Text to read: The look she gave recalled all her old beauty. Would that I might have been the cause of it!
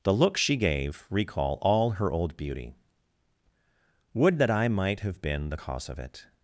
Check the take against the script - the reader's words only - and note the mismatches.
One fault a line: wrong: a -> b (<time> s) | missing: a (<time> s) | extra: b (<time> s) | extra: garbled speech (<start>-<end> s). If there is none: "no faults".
wrong: recalled -> recall (1.1 s)